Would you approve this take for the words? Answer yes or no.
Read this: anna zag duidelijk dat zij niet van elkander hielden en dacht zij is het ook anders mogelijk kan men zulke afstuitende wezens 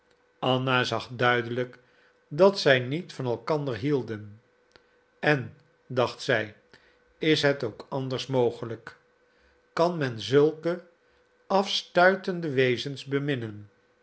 yes